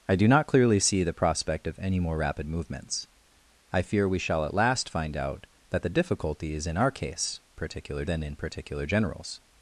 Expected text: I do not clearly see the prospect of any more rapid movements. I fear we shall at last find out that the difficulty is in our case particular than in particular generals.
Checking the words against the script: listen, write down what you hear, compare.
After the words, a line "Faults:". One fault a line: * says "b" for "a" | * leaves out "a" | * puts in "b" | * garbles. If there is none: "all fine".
I do not clearly see the prospect of any more rapid movements. I fear we shall at last find out that the difficulty is in our case particular than in particular generals.
Faults:
all fine